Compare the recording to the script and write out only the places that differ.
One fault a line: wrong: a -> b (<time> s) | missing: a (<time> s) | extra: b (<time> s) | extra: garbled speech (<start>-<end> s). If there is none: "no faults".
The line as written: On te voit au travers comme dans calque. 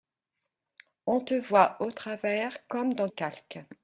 no faults